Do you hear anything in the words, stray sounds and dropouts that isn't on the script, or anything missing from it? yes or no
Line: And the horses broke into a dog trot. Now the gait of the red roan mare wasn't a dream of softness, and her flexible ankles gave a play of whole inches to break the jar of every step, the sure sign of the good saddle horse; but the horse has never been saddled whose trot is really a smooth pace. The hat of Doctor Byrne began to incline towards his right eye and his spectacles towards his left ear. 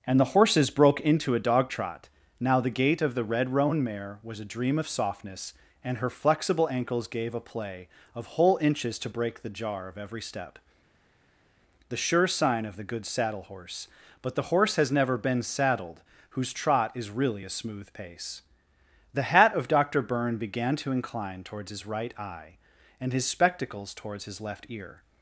yes